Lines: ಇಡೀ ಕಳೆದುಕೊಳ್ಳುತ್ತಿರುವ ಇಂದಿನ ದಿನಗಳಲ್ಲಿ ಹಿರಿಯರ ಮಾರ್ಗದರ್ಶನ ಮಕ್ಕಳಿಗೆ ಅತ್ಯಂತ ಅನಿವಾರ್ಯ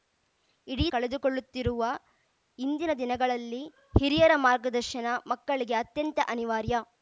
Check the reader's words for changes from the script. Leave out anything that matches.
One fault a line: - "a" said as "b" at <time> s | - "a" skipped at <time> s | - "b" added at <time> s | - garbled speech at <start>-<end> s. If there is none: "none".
none